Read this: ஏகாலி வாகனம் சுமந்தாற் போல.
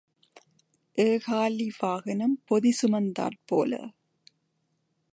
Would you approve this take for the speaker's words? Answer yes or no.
no